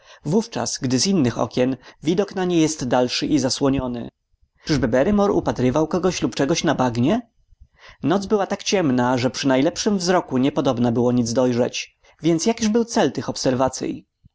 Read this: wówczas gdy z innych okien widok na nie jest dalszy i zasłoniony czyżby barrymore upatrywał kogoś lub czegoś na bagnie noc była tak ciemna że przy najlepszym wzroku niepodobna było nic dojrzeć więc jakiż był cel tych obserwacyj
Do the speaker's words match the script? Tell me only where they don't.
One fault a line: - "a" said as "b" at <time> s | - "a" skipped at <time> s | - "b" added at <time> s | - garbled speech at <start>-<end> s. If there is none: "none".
none